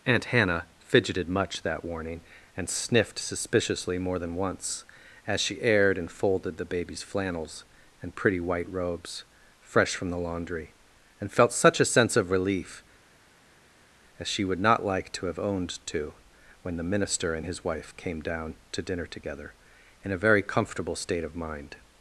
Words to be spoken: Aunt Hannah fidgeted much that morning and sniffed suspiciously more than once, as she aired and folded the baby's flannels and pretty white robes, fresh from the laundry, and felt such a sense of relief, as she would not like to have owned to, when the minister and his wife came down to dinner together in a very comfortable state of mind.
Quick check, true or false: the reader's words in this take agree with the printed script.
false